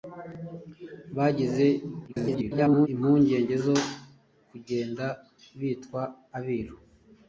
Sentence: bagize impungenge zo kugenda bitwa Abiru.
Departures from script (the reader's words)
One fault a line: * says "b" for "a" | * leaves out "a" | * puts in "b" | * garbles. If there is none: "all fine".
* garbles